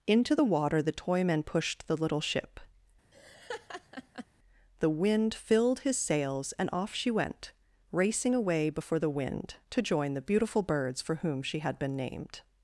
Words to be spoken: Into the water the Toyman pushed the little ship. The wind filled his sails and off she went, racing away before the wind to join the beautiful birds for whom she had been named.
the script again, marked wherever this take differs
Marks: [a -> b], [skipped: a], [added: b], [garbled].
Into the water the Toyman pushed the little ship. The wind filled his sails and off she went, racing away before the wind to join the beautiful birds for whom she had been named.